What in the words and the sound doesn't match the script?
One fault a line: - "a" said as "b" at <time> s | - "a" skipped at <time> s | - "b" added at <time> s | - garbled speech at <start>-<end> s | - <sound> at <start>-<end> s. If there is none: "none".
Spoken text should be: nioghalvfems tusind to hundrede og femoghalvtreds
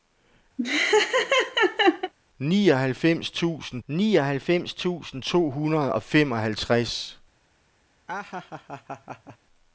- laugh at 0.6-2.1 s
- "nioghalvfems tusind" added at 3.9 s
- laugh at 8.1-9.4 s